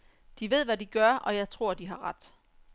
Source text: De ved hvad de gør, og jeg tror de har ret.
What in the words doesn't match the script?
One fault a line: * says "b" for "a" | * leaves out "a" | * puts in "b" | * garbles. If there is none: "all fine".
all fine